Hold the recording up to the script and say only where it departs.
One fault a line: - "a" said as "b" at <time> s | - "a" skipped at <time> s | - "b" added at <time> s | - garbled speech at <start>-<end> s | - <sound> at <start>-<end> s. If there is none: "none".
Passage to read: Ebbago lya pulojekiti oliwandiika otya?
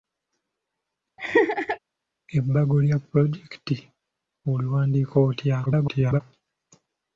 - laugh at 1.2-1.8 s
- garbled speech at 5.7-6.2 s